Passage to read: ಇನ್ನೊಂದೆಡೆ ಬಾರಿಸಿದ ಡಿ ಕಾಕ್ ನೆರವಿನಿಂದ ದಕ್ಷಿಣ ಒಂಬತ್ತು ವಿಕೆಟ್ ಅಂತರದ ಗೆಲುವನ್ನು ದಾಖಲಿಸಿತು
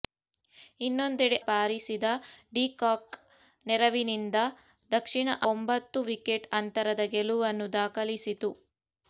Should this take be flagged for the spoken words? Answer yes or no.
no